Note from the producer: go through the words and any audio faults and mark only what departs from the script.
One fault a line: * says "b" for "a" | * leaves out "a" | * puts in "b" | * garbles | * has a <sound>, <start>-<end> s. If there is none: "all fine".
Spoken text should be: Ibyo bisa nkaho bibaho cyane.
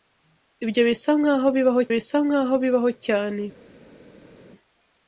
* puts in "bisa nkaho bibaho"